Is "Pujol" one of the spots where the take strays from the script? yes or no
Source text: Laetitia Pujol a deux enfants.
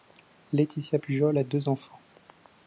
no